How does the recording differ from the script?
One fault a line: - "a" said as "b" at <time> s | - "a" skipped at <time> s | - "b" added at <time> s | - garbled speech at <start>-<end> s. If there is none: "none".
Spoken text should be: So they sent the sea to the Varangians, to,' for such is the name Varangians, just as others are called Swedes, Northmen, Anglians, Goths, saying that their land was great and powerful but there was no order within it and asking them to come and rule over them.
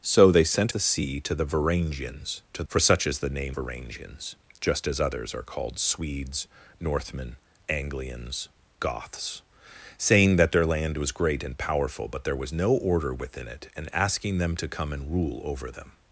none